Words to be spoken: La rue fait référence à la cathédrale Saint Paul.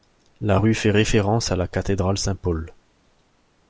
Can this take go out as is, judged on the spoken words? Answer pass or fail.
pass